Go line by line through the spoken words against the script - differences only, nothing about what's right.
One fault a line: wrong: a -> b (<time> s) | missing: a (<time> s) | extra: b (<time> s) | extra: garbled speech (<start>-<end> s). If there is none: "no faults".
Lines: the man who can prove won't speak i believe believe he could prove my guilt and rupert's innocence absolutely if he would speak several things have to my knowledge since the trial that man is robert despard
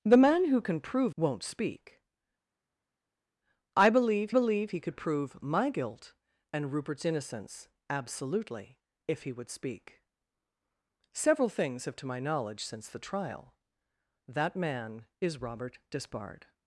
no faults